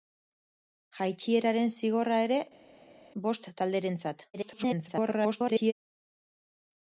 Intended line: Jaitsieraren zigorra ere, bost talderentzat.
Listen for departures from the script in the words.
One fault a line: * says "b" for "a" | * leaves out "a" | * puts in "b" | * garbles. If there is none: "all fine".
* garbles